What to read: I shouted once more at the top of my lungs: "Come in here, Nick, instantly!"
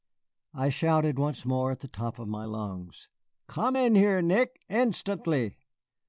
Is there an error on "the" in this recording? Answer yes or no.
no